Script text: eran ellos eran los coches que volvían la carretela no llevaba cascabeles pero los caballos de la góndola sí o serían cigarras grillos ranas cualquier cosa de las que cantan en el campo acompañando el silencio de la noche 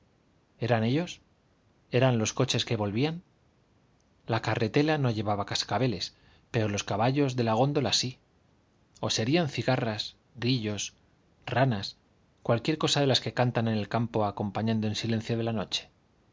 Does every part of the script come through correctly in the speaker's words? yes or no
yes